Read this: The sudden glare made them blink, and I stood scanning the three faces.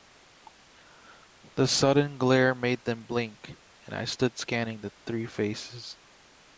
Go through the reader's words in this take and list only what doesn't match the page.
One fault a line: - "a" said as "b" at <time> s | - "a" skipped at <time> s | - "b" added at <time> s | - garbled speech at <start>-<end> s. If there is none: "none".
none